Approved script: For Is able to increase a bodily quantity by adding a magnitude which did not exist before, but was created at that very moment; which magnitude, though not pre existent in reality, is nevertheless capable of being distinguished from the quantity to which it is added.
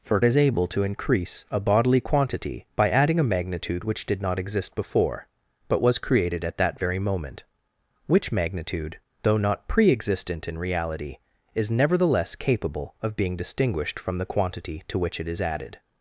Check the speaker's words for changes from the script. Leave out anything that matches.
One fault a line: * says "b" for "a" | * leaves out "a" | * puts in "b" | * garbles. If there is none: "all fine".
all fine